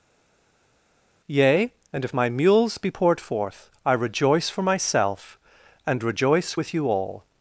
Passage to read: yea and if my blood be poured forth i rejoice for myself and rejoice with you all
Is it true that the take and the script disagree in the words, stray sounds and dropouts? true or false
true